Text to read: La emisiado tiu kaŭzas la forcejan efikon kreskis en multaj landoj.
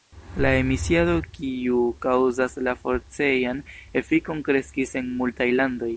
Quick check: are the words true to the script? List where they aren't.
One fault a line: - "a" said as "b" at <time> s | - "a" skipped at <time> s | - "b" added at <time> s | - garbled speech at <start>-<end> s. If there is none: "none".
- "tiu" said as "kiu" at 1.4 s